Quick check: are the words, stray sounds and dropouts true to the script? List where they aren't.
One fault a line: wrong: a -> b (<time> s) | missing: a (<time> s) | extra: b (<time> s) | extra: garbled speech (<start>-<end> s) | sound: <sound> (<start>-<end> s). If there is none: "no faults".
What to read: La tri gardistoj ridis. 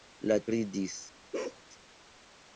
missing: tri gardistoj (0.4 s)
sound: bark (1.3-1.6 s)